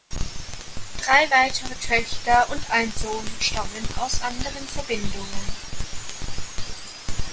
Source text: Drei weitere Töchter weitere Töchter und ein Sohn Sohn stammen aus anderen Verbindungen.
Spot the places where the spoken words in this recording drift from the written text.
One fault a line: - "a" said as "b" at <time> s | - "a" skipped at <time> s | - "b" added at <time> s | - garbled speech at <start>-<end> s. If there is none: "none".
- "weitere Töchter" skipped at 2.4 s
- "Sohn" skipped at 3.2 s